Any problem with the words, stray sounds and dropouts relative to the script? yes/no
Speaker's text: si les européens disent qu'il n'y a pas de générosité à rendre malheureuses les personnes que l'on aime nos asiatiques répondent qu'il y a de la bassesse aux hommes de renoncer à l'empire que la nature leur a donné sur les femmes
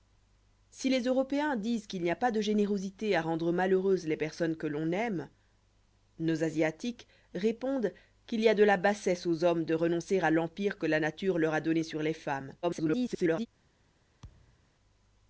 yes